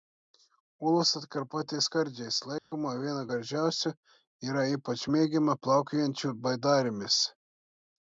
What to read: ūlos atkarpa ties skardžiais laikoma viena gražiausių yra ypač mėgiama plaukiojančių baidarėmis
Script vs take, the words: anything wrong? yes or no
no